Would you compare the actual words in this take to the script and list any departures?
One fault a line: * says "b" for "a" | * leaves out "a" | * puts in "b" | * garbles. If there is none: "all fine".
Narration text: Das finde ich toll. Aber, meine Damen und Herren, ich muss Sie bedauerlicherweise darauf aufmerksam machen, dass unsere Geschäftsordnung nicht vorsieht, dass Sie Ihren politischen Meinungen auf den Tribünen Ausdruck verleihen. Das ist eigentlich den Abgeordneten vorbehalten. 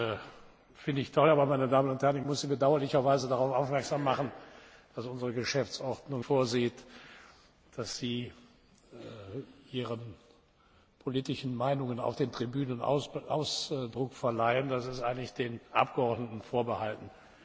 * leaves out "nicht"